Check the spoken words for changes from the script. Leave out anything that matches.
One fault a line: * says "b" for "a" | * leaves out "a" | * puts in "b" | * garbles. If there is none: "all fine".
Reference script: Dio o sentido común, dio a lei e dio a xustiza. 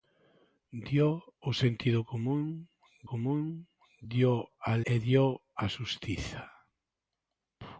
* puts in "común"
* leaves out "lei"